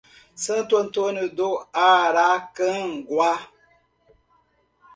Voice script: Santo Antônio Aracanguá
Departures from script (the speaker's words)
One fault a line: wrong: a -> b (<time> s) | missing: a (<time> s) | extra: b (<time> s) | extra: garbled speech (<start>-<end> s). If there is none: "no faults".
extra: do (1.3 s)